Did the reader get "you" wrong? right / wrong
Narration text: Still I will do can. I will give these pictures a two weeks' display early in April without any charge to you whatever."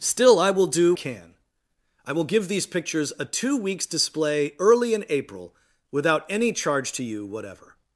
right